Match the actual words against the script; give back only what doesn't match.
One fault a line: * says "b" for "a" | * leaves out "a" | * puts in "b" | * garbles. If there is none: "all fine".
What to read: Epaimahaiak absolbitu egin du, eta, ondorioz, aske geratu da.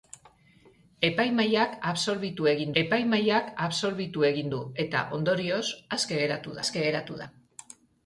* puts in "epaimahaiak absolbitu egin"
* puts in "aske geratu"